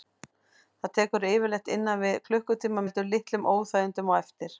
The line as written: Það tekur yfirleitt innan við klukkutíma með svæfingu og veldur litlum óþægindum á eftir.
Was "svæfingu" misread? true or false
true